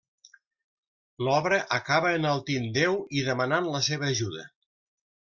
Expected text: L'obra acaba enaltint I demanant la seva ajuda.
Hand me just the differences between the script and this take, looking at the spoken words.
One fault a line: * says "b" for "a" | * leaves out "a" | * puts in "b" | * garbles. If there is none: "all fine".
* puts in "Déu"